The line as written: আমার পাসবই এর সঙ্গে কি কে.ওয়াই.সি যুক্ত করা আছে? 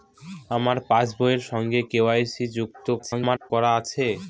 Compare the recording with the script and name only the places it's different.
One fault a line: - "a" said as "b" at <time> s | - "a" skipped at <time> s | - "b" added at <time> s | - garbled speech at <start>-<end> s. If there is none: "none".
- "কি" skipped at 1.8 s
- garbled speech at 3.0-3.5 s